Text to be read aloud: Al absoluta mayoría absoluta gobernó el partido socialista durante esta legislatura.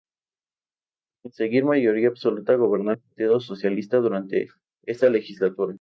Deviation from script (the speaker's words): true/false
true